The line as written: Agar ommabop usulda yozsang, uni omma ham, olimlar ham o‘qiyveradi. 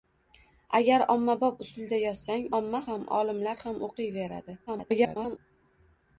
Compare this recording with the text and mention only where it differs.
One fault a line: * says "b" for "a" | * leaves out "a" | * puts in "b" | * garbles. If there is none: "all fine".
* leaves out "uni"
* garbles